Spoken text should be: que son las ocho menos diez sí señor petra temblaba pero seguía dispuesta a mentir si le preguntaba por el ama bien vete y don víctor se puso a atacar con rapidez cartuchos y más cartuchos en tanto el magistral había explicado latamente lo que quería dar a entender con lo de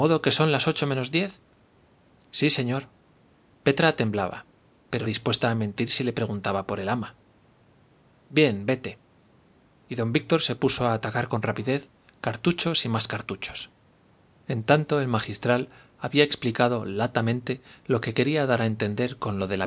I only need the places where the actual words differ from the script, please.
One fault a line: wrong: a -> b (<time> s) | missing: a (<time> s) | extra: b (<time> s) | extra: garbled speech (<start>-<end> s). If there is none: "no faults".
missing: seguía (5.1 s)